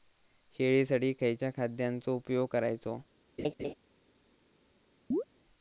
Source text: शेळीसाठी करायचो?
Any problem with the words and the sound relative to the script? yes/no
yes